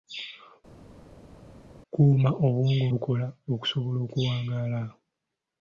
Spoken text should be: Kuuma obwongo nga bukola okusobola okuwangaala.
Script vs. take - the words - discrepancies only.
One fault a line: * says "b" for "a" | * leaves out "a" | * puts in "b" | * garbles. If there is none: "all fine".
* leaves out "nga"